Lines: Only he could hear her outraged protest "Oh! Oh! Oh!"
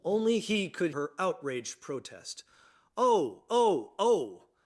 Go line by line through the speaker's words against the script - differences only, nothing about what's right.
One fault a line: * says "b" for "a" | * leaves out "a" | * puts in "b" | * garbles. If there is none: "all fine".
* leaves out "hear"